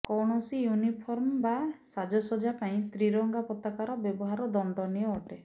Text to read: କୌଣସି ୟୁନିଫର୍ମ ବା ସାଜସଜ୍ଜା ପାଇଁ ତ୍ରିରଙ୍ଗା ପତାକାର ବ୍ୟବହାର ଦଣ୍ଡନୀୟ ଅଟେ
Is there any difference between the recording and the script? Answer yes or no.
no